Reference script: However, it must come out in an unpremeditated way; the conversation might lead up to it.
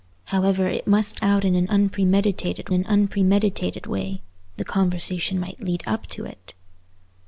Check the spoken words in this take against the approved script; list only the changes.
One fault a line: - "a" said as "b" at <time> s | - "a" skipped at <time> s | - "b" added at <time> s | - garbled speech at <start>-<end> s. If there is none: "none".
- "come" skipped at 1.2 s
- "an unpremeditated" added at 2.7 s